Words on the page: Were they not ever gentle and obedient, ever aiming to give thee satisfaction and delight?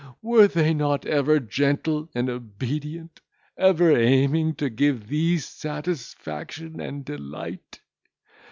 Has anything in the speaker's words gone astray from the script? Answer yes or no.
no